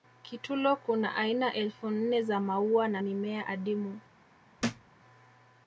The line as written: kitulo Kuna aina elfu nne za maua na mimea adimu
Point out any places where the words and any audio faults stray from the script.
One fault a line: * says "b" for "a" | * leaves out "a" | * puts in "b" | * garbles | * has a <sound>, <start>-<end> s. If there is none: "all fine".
* has a thud, 4.6-4.9 s